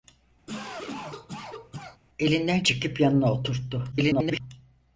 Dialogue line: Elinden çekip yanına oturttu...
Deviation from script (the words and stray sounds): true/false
true